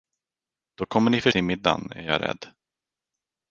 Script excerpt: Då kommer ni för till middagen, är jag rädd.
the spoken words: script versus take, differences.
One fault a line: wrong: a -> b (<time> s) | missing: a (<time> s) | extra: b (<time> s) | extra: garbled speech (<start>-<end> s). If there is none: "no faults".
no faults